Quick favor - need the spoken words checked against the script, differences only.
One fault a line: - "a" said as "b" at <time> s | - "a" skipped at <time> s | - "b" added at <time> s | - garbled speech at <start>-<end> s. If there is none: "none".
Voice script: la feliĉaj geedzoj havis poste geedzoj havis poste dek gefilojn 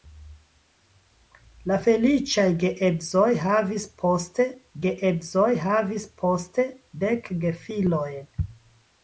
none